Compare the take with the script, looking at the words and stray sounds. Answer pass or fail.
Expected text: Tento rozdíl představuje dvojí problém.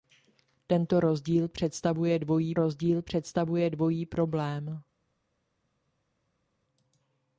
fail